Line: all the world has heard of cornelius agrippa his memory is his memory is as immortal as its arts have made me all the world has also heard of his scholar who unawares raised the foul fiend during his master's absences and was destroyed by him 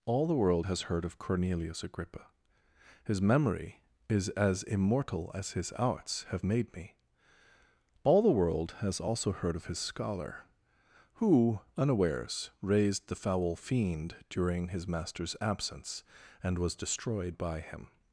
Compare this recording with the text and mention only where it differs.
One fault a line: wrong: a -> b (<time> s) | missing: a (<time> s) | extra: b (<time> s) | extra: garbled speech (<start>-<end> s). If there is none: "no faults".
missing: his memory is (4.3 s)
wrong: its -> his (5.5 s)
wrong: absences -> absence (15.4 s)